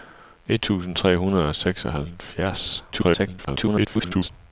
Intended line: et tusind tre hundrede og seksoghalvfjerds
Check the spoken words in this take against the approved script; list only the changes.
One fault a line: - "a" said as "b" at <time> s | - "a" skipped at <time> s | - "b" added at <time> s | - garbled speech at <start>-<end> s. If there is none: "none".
- garbled speech at 2.9-4.3 s